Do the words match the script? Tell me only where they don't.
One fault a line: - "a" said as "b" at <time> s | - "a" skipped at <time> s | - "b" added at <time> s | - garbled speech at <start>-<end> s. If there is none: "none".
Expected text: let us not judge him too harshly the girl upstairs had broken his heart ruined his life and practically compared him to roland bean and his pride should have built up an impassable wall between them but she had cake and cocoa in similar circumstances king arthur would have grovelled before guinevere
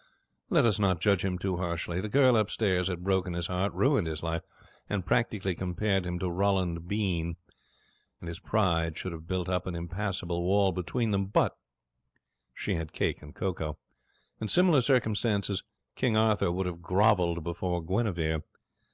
none